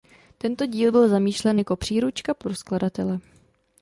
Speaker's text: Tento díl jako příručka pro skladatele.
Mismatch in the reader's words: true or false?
true